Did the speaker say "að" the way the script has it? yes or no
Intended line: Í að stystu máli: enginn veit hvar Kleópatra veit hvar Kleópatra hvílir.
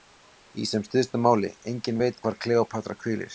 no